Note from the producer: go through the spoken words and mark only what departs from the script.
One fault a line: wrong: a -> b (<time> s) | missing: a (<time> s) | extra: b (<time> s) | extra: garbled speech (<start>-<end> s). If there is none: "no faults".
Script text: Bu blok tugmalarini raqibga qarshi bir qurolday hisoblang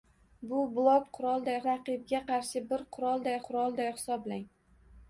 wrong: tugmalarini -> qurolday (1.2 s)
extra: qurolday (3.5 s)